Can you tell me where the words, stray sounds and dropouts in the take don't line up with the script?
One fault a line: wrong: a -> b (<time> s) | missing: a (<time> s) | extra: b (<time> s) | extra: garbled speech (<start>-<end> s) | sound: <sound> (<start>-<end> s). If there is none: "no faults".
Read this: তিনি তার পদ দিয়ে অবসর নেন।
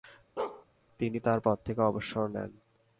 sound: bark (0.4-0.7 s)
wrong: দিয়ে -> থেকে (1.7 s)